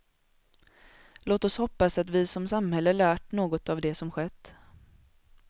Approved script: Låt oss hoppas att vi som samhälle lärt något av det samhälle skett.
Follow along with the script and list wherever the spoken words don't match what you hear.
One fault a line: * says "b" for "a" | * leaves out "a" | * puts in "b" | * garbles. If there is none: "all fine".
* says "som" for "samhälle"